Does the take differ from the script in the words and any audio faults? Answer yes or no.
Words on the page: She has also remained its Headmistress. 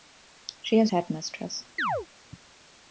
yes